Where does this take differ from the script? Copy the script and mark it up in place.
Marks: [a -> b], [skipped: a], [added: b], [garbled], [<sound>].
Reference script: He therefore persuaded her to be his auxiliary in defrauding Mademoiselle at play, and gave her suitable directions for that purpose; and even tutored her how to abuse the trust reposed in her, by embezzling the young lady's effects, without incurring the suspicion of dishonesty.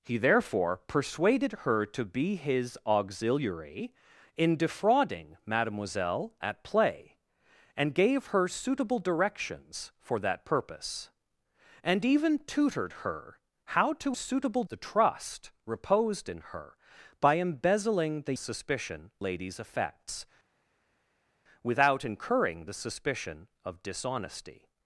He therefore persuaded her to be his auxiliary in defrauding Mademoiselle at play, and gave her suitable directions for that purpose; and even tutored her how to [abuse -> suitable] the trust reposed in her, by embezzling the [young -> suspicion] lady's effects, without incurring the suspicion of dishonesty.